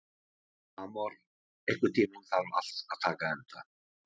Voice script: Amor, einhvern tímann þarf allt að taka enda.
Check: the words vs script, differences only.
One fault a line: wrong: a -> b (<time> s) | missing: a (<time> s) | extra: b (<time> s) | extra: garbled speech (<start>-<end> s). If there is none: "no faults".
no faults